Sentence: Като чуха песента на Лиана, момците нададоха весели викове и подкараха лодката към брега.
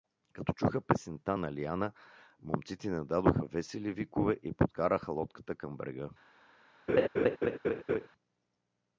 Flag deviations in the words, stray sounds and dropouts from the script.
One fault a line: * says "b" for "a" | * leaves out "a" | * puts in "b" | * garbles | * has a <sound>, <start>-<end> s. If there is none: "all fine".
* has a laugh, 6.9-8.1 s